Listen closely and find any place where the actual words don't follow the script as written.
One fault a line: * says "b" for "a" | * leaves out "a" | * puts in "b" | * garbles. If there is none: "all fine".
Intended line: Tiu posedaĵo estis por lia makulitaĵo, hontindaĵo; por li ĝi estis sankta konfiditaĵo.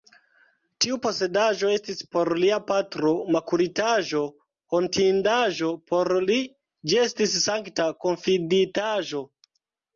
* puts in "patro"